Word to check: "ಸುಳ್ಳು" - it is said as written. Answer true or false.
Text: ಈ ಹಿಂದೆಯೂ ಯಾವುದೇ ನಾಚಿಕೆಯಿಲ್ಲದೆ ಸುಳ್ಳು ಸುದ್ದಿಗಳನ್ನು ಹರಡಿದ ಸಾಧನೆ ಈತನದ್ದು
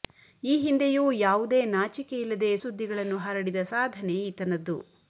false